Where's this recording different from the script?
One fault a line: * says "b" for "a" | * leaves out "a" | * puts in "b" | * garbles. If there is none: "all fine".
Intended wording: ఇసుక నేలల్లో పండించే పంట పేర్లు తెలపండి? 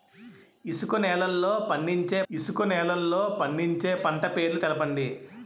* puts in "ఇసుక నేలల్లో పండించే"